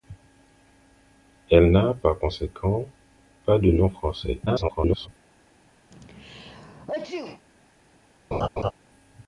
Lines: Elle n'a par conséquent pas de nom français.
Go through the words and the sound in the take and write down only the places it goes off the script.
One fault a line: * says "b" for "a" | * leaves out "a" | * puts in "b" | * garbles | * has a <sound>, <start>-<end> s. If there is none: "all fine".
* garbles
* has a sneeze, 5.9-7.4 s
* has a laugh, 8.3-8.7 s